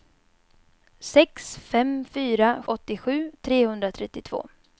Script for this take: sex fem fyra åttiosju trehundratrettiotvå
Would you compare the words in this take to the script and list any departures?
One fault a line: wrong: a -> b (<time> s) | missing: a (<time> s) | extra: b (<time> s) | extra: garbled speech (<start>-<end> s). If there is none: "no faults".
no faults